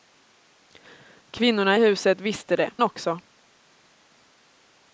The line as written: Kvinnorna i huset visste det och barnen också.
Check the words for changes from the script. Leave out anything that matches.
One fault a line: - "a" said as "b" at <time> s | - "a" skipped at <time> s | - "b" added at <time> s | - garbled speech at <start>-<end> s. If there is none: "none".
- "och barnen" skipped at 2.7 s